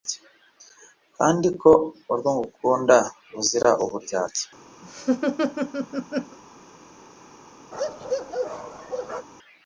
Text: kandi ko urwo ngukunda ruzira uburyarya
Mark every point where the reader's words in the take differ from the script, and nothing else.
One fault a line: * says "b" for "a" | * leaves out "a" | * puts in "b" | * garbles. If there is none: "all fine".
all fine